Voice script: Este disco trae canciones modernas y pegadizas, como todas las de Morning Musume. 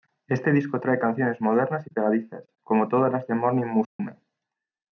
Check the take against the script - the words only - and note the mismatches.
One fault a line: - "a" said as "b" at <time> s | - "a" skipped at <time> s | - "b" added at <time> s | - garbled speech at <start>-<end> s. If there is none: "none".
none